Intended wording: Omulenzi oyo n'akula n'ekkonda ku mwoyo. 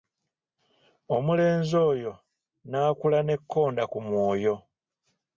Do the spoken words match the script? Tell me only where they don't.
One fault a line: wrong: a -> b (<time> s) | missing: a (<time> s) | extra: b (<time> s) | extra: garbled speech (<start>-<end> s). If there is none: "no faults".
no faults